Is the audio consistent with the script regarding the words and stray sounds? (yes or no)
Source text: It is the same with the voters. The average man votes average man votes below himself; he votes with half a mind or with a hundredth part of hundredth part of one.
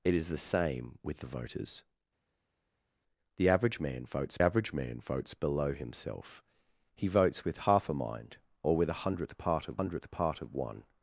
yes